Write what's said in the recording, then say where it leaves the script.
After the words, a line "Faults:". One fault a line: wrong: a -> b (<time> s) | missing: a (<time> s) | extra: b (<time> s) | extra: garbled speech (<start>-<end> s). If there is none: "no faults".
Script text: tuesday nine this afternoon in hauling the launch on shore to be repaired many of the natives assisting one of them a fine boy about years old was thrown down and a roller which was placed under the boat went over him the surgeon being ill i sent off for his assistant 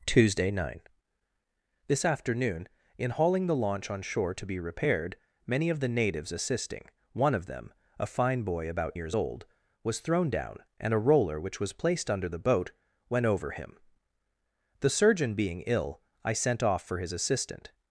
tuesday nine this afternoon in hauling the launch on shore to be repaired many of the natives assisting one of them a fine boy about years old was thrown down and a roller which was placed under the boat went over him the surgeon being ill i sent off for his assistant
Faults:
no faults